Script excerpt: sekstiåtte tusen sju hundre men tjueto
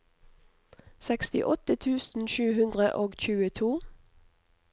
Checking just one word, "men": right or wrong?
wrong